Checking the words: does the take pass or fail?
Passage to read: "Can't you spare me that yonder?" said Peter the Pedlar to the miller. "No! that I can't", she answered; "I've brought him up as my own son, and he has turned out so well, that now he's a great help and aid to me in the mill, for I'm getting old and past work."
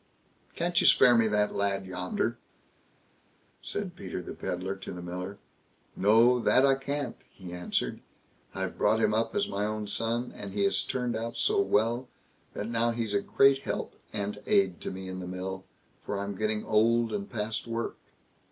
fail